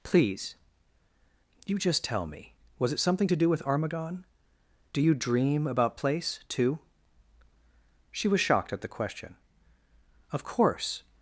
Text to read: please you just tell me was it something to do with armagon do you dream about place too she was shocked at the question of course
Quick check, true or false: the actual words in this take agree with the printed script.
true